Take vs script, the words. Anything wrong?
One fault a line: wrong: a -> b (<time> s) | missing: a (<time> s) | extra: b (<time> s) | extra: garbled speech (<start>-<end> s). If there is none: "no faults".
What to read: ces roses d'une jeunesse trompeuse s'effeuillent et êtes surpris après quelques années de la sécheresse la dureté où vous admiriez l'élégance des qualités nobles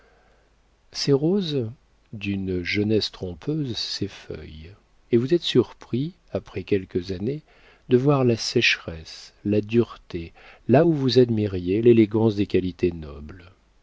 extra: vous (5.2 s)
extra: voir (8.0 s)
extra: là (10.7 s)